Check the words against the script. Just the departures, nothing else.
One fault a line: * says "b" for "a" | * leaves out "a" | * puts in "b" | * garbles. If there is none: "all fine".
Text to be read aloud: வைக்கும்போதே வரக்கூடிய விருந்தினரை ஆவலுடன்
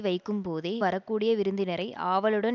all fine